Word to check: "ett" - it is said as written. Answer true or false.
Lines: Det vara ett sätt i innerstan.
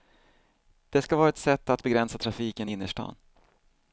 true